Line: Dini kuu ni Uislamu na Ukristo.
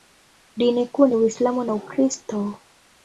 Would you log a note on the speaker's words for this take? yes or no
no